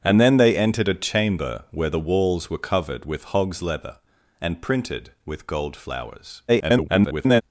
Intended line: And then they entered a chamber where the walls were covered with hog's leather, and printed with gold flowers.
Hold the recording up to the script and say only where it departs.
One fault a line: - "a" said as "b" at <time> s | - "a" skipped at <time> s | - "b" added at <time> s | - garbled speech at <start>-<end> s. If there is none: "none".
- garbled speech at 6.5-7.4 s